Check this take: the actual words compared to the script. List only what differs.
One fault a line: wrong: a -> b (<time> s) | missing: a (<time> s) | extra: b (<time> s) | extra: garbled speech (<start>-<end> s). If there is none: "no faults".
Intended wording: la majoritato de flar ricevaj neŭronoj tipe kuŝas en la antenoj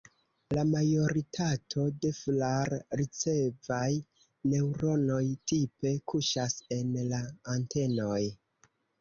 no faults